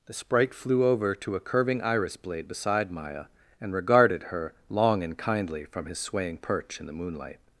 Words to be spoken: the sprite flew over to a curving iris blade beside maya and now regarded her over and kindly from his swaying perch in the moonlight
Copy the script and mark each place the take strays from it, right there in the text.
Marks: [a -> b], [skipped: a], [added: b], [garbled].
the sprite flew over to a curving iris blade beside maya and [skipped: now] regarded her [over -> long] and kindly from his swaying perch in the moonlight